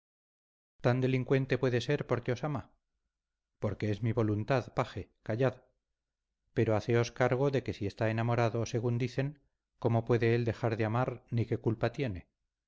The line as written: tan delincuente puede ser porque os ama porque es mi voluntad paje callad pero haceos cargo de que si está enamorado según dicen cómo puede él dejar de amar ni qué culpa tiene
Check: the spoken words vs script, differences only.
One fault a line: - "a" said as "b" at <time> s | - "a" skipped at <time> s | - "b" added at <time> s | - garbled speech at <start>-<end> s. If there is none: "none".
none